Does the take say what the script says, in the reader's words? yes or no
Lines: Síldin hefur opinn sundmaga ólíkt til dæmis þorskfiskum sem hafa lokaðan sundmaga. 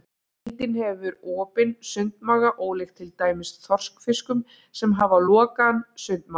yes